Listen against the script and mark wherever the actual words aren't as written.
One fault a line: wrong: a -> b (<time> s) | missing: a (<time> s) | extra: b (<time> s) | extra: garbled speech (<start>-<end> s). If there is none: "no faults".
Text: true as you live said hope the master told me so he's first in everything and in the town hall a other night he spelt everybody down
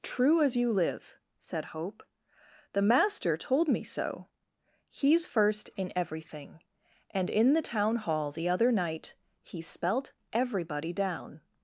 wrong: a -> the (8.3 s)